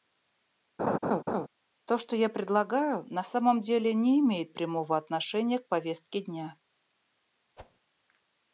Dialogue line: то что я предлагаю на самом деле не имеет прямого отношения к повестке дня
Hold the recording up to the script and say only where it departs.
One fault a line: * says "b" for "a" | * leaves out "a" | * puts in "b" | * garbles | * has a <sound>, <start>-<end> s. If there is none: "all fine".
* has a laugh, 0.8-1.5 s
* has a whoosh, 7.6-7.8 s